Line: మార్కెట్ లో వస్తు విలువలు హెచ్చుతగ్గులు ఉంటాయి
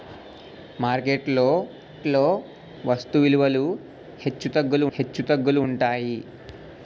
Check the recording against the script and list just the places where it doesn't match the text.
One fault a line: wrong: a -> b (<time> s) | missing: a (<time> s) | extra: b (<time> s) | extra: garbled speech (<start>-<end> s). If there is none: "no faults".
extra: లో (2.1 s)
extra: హెచ్చుతగ్గులు (4.9 s)